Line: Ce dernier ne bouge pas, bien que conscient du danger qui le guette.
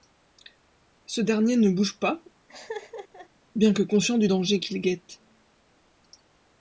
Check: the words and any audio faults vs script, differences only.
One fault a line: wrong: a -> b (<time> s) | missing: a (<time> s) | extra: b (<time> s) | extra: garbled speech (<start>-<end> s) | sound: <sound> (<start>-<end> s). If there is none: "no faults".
sound: laugh (2.5-3.3 s)